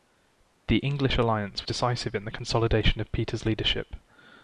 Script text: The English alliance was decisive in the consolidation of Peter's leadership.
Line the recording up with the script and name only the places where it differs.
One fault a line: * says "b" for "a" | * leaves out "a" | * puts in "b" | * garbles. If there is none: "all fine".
* leaves out "was"